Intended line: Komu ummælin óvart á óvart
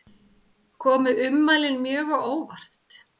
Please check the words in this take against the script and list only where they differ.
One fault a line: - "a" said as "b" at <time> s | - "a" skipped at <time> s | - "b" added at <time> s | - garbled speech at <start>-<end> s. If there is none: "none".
- "óvart" said as "mjög" at 1.8 s